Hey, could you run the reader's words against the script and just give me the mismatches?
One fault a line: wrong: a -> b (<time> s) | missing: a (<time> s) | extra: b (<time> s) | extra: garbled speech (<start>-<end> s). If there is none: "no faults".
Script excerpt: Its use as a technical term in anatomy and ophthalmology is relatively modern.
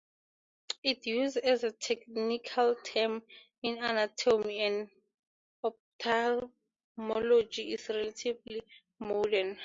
no faults